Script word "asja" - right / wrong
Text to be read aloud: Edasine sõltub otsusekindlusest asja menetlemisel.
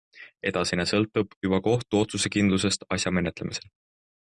right